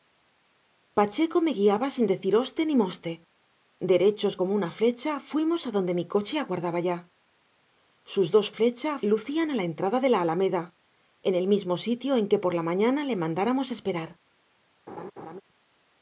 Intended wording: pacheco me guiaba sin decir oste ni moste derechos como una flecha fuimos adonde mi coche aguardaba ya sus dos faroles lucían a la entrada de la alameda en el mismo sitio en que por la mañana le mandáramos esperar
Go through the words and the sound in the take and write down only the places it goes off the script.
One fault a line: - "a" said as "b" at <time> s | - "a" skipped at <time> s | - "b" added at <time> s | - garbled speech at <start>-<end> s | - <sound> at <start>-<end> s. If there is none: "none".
- "faroles" said as "flecha" at 8.6 s
- laugh at 14.9-15.4 s